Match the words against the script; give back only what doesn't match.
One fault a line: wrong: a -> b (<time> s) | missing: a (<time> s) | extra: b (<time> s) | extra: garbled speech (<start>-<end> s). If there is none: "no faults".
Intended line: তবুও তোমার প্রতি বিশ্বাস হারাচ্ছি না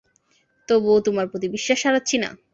no faults